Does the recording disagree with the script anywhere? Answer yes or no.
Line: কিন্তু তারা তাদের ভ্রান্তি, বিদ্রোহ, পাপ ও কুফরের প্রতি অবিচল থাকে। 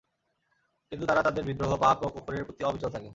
yes